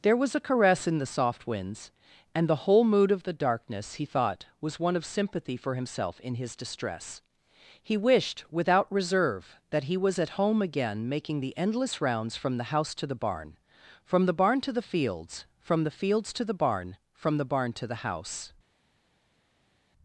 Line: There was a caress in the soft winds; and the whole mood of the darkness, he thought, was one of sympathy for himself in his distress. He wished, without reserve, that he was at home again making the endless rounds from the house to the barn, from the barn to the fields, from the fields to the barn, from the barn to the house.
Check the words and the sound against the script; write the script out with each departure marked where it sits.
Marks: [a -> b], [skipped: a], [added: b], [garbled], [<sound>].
There was a caress in the soft winds; and the whole mood of the darkness, he thought, was one of sympathy for himself in his distress. He wished, without reserve, that he was at home again making the endless rounds from the house to the barn, from the barn to the fields, from the fields to the barn, from the barn to the house.